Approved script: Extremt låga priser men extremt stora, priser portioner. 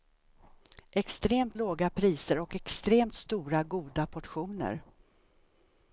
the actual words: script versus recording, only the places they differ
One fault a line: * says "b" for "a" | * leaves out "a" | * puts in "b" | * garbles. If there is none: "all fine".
* says "och" for "men"
* says "goda" for "priser"